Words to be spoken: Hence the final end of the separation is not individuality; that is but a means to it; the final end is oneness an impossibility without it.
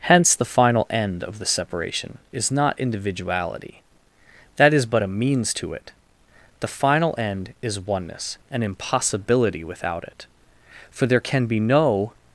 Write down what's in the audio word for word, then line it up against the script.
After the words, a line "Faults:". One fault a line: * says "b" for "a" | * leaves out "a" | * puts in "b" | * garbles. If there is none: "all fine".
Hence the final end of the separation is not individuality; that is but a means to it; the final end is oneness an impossibility without it. For there can be no
Faults:
* puts in "For there can be no"